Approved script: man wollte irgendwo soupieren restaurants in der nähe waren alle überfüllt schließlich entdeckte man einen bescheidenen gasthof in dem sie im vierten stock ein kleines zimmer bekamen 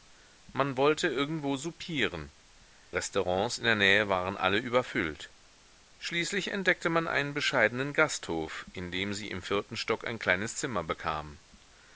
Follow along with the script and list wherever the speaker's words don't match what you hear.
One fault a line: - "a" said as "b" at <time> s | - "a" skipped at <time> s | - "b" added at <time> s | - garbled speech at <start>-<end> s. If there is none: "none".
none